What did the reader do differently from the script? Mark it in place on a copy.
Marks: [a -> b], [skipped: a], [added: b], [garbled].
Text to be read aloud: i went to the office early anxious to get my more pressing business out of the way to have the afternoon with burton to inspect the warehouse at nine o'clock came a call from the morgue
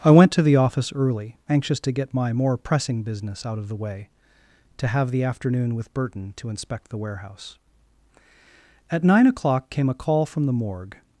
i went to the office early anxious to get my more pressing business out of the way to have the afternoon with burton to inspect the warehouse at nine o'clock came a call from the morgue